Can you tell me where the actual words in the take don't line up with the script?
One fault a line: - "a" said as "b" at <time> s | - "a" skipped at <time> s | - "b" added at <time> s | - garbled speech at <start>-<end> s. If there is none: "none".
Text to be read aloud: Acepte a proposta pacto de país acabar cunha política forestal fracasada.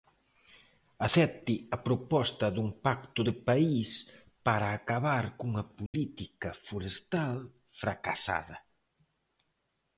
- "dun" added at 2.5 s
- "para" added at 4.5 s